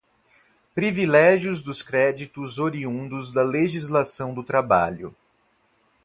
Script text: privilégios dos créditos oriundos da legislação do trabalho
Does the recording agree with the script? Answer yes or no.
yes